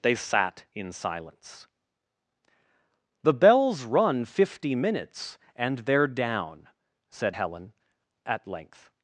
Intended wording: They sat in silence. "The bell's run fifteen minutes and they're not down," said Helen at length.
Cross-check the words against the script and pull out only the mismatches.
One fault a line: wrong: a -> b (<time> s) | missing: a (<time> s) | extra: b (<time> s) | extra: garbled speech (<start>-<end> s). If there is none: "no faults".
wrong: fifteen -> fifty (4.2 s)
missing: not (6.1 s)